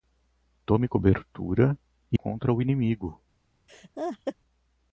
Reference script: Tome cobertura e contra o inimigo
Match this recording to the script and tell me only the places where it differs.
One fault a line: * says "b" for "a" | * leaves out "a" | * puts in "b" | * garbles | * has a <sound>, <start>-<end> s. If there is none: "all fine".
* has a laugh, 3.7-4.4 s